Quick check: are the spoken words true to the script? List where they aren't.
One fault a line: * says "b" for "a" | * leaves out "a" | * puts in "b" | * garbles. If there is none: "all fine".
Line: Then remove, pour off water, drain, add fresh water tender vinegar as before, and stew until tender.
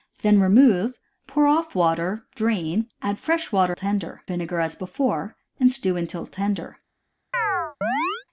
all fine